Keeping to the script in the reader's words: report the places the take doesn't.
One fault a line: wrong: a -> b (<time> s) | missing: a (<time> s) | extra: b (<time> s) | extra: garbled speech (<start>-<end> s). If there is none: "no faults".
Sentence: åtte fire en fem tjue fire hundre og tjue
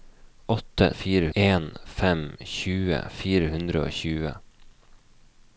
no faults